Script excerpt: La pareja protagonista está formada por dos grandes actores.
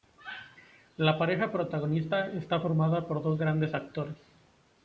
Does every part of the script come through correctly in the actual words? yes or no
yes